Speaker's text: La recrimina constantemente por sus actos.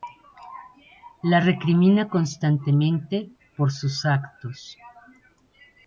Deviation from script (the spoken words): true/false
false